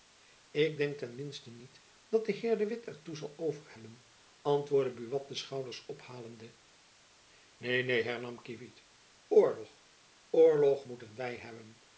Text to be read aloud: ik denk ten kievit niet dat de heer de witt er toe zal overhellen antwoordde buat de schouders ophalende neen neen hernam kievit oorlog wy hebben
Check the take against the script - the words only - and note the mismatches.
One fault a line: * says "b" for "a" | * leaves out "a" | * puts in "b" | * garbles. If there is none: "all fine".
* says "minsten" for "kievit"
* puts in "oorlog moeten"